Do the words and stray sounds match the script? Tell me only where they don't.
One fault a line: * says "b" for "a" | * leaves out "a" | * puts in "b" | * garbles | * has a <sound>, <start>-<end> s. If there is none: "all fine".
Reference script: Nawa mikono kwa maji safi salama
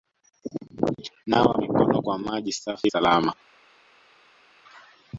all fine